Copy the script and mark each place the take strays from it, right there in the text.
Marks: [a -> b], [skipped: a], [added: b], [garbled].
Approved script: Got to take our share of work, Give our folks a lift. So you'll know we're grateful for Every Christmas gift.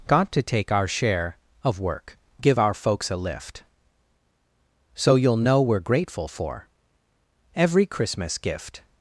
Got to take our share of work, Give our folks a lift. So you'll know we're grateful for Every Christmas gift.